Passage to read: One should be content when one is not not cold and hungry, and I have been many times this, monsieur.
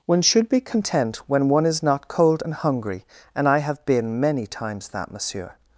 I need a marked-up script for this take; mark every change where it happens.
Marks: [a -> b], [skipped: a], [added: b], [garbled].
One should be content when one is not [skipped: not] cold and hungry, and I have been many times [this, -> that] monsieur.